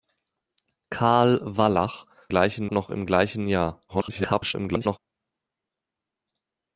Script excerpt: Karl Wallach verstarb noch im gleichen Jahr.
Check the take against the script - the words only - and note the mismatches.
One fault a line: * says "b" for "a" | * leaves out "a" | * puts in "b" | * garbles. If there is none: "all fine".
* says "gleichen" for "verstarb"
* garbles